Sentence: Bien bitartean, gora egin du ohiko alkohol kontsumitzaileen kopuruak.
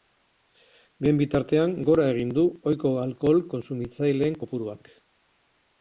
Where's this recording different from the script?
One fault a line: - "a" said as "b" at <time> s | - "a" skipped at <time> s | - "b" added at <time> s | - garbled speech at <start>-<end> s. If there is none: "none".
none